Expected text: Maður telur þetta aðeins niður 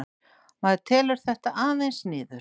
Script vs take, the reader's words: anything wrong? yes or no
no